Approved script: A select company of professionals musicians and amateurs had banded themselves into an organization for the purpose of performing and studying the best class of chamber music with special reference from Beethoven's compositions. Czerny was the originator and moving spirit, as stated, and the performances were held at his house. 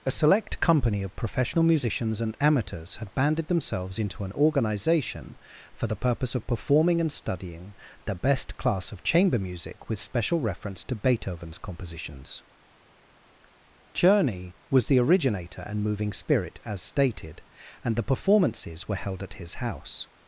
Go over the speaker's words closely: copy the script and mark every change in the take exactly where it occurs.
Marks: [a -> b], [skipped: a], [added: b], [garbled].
A select company of [professionals -> professional] musicians and amateurs had banded themselves into an organization for the purpose of performing and studying the best class of chamber music with special reference [from -> to] Beethoven's compositions. Czerny was the originator and moving spirit, as stated, and the performances were held at his house.